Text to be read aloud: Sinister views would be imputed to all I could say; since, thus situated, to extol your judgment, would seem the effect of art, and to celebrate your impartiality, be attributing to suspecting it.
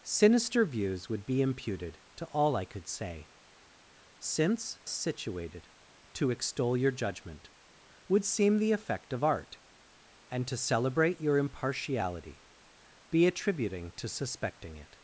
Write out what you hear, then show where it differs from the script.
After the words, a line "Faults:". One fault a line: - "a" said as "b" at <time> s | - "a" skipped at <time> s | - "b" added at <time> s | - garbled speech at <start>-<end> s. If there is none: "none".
Sinister views would be imputed to all I could say; since, situated, to extol your judgment, would seem the effect of art, and to celebrate your impartiality, be attributing to suspecting it.
Faults:
- "thus" skipped at 4.8 s